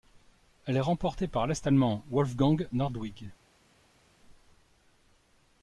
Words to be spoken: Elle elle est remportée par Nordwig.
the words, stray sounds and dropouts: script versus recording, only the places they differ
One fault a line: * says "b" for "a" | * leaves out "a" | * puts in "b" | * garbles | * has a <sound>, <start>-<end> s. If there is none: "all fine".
* leaves out "elle"
* puts in "l'Est allemand Wolfgang"